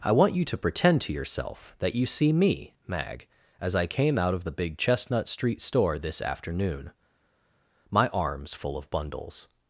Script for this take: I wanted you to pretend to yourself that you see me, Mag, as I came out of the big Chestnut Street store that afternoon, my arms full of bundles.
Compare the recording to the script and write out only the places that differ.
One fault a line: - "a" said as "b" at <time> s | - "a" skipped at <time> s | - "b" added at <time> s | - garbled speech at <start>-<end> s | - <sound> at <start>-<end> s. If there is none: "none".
- "wanted" said as "want" at 0.1 s
- "that" said as "this" at 6.0 s